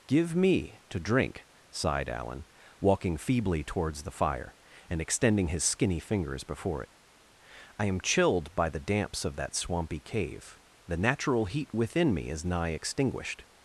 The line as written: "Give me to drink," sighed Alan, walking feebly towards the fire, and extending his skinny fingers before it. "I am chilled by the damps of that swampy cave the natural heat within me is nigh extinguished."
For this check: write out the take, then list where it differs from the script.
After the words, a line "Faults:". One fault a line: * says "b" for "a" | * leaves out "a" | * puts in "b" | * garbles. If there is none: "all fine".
"Give me to drink," sighed Alan, walking feebly towards the fire, and extending his skinny fingers before it. "I am chilled by the damps of that swampy cave the natural heat within me is nigh extinguished."
Faults:
all fine